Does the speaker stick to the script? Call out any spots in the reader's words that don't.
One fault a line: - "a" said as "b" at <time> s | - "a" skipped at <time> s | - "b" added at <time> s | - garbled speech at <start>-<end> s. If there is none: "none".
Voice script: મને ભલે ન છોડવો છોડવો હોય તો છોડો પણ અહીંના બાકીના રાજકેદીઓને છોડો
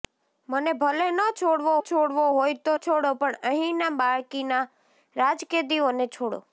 none